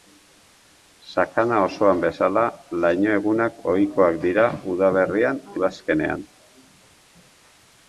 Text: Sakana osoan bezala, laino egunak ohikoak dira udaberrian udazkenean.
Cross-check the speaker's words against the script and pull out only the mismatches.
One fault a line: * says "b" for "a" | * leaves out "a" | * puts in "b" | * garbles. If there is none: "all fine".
all fine